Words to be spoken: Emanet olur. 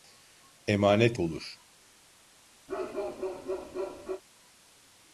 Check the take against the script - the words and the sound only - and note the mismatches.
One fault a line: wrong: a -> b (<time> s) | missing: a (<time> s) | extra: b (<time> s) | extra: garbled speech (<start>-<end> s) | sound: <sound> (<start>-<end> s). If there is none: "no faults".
sound: bark (2.7-4.2 s)